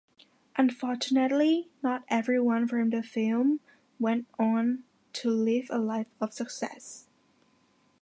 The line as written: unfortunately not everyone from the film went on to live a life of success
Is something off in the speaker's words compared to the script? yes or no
no